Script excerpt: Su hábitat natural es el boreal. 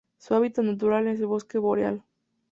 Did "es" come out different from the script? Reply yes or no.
no